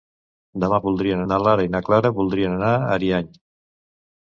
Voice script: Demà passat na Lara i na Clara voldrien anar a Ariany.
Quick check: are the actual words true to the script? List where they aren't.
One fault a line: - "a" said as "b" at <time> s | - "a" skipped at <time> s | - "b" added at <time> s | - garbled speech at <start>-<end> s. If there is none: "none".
- "passat" said as "voldrien" at 0.9 s